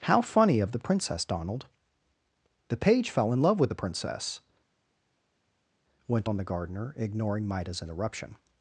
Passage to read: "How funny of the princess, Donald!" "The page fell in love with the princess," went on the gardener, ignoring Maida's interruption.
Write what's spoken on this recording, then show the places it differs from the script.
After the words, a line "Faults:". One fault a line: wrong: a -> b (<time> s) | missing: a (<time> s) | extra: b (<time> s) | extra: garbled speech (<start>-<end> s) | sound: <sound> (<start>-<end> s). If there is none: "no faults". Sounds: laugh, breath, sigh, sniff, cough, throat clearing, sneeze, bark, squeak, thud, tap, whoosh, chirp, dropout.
"How funny of the princess, Donald!" "The page fell in love with the princess," went on the gardener, ignoring Maida's interruption.
Faults:
no faults